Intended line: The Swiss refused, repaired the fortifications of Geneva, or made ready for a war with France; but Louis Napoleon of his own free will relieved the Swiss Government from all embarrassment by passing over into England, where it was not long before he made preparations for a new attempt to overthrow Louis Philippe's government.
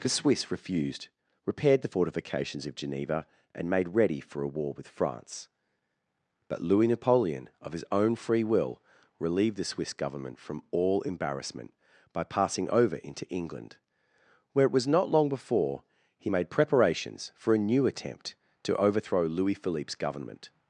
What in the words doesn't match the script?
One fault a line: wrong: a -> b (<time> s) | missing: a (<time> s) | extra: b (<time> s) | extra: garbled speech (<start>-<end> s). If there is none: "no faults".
wrong: or -> and (3.5 s)